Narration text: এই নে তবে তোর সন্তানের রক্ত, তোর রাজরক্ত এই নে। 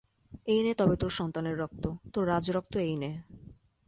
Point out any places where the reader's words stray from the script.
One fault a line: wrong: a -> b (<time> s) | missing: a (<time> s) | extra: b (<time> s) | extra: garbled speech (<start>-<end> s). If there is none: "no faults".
no faults